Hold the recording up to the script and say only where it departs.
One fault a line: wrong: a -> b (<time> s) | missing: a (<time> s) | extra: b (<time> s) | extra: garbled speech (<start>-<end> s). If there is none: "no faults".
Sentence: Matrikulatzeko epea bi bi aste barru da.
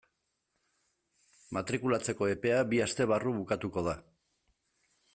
missing: bi (2.8 s)
extra: bukatuko (3.4 s)